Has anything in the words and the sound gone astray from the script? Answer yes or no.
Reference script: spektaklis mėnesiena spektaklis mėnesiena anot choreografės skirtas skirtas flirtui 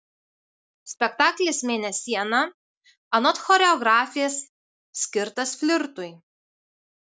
yes